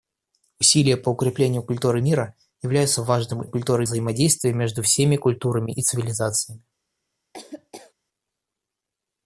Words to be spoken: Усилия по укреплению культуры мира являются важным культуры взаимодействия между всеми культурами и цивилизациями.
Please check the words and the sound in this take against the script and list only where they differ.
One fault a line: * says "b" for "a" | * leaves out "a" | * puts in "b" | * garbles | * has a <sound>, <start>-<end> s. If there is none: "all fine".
* has a laugh, 7.3-7.9 s